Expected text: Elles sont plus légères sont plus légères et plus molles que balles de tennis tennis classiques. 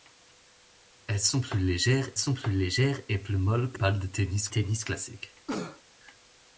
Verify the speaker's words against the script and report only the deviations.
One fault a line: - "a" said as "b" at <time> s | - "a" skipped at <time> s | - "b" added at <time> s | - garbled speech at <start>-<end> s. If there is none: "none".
none